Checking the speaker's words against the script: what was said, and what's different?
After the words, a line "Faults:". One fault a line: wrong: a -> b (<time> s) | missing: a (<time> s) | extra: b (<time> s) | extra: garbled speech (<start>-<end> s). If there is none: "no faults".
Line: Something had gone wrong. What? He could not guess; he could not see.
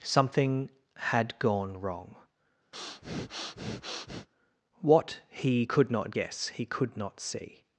Something had gone wrong. What? He could not guess; he could not see.
Faults:
no faults